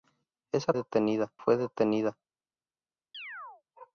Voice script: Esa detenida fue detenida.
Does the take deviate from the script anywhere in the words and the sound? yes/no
yes